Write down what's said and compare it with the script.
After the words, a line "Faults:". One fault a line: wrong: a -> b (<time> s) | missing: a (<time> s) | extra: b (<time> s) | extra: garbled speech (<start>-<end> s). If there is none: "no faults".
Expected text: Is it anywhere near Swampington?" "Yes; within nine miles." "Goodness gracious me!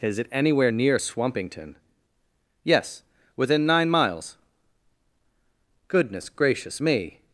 Is it anywhere near Swampington?" "Yes; within nine miles." "Goodness gracious me!
Faults:
no faults